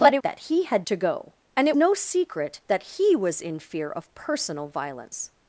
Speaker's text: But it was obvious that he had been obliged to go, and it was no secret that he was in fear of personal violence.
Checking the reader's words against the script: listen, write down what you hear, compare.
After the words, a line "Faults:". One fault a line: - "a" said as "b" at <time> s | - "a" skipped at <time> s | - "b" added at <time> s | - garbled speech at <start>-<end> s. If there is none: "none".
But it that he had to go, and it no secret that he was in fear of personal violence.
Faults:
- "was obvious" skipped at 0.2 s
- "been obliged" skipped at 0.8 s
- "was" skipped at 1.8 s